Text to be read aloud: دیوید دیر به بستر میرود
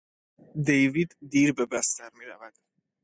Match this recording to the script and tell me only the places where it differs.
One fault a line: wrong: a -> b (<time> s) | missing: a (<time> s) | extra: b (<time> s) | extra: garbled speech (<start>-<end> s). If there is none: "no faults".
no faults